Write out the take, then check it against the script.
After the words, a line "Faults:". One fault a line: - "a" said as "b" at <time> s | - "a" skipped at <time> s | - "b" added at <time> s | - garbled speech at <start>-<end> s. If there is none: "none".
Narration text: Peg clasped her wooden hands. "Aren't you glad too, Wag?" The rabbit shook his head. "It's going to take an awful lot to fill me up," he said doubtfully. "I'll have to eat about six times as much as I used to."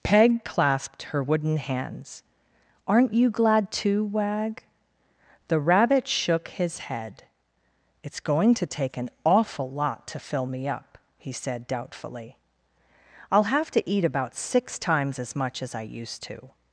Peg clasped her wooden hands. "Aren't you glad too, Wag?" The rabbit shook his head. "It's going to take an awful lot to fill me up," he said doubtfully. "I'll have to eat about six times as much as I used to."
Faults:
none